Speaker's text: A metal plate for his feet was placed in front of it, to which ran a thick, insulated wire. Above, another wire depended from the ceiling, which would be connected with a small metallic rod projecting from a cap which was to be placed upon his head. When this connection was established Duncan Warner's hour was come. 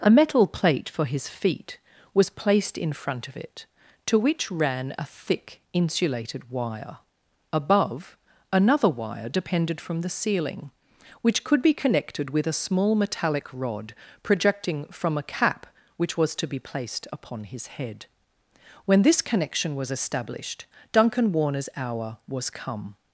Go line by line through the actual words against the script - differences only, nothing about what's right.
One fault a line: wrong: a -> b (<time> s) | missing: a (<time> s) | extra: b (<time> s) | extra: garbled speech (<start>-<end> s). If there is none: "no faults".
wrong: would -> could (11.4 s)